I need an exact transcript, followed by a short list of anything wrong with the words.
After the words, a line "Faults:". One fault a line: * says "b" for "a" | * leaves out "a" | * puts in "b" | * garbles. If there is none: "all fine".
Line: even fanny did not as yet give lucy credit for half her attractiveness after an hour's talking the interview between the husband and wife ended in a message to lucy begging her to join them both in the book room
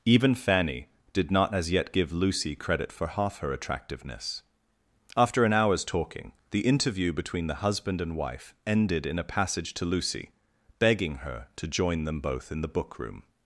even fanny did not as yet give lucy credit for half her attractiveness after an hour's talking the interview between the husband and wife ended in a passage to lucy begging her to join them both in the book room
Faults:
* says "passage" for "message"